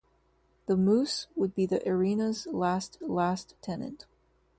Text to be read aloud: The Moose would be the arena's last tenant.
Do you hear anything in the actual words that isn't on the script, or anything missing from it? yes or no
yes